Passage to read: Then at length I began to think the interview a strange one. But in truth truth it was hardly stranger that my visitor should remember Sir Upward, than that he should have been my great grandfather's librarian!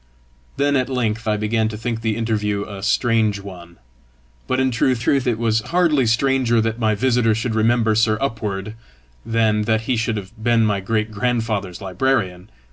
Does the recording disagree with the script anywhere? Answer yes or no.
no